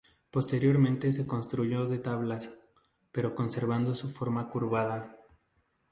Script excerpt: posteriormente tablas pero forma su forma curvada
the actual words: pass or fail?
fail